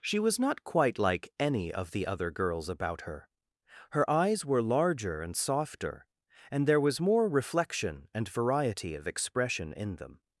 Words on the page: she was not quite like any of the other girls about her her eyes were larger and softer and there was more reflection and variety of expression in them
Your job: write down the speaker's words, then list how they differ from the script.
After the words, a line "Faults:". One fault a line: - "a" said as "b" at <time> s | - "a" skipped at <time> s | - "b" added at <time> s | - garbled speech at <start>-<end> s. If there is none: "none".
she was not quite like any of the other girls about her her eyes were larger and softer and there was more reflection and variety of expression in them
Faults:
none